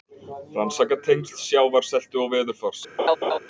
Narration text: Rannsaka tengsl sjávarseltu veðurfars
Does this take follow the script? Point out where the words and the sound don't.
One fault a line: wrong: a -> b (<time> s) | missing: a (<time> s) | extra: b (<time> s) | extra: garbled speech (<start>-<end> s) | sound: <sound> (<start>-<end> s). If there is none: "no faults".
extra: og (2.2 s)
sound: laugh (3.0-3.4 s)